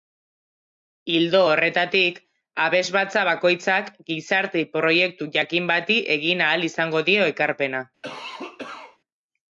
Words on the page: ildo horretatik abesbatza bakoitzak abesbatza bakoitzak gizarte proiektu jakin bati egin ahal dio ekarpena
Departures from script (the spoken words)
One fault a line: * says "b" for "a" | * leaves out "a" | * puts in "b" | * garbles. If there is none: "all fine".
* leaves out "abesbatza bakoitzak"
* puts in "izango"